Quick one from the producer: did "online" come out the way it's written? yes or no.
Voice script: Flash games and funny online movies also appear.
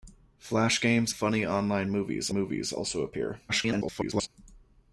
yes